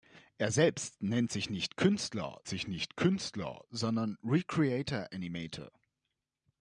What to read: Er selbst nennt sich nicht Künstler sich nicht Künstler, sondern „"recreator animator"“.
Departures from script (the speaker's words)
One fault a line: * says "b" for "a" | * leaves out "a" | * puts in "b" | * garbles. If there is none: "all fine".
all fine